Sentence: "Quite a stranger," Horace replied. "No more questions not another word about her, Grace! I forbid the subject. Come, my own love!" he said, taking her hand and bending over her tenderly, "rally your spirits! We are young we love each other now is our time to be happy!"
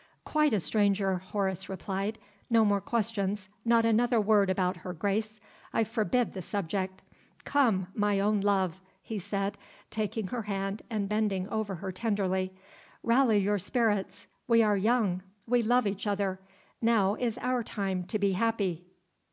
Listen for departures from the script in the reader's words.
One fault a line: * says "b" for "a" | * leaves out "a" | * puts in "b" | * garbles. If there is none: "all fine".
all fine